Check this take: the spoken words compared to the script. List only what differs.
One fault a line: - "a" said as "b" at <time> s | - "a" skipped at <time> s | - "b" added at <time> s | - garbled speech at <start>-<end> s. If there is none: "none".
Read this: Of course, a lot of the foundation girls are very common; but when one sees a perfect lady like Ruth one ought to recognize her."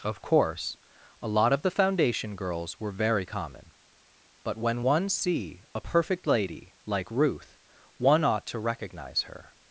- "are" said as "were" at 2.8 s
- "sees" said as "see" at 5.1 s